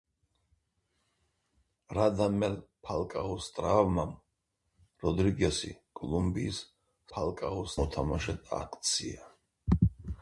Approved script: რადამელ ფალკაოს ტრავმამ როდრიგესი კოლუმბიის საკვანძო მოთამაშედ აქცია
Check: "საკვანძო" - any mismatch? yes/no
yes